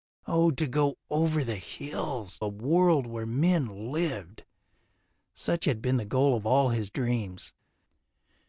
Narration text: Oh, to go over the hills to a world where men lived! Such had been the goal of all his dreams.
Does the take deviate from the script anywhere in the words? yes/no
yes